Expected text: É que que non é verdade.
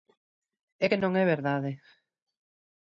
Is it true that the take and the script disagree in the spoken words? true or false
true